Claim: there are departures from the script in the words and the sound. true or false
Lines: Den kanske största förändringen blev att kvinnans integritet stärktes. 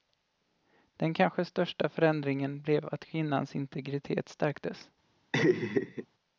true